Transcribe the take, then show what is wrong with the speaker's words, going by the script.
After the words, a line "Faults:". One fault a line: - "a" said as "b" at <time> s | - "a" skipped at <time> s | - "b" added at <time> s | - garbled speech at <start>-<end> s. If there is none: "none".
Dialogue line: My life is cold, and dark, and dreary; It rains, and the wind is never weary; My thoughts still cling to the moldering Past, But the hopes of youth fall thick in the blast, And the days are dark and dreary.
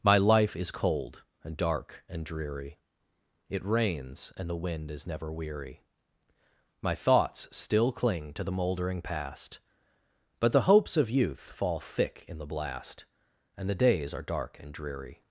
My life is cold, and dark, and dreary; It rains, and the wind is never weary; My thoughts still cling to the moldering Past, But the hopes of youth fall thick in the blast, And the days are dark and dreary.
Faults:
none